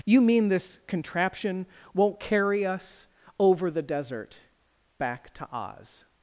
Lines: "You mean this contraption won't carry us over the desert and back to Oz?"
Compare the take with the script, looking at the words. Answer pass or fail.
fail